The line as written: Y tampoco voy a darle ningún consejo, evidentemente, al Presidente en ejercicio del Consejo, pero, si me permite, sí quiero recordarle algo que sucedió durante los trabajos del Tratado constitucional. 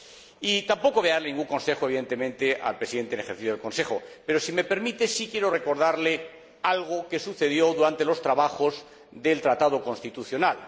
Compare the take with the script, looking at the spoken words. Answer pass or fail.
pass